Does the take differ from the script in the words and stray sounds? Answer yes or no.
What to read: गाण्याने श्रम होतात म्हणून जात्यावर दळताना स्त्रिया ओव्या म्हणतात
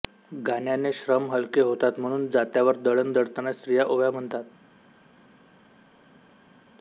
yes